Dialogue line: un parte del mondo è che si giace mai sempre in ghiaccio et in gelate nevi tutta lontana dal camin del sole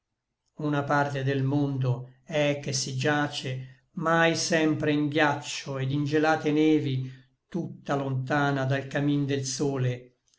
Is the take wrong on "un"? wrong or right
wrong